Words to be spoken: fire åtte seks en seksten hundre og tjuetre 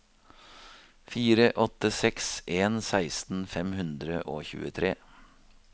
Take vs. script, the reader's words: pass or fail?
fail